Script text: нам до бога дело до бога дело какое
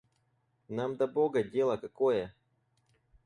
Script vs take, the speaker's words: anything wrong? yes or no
yes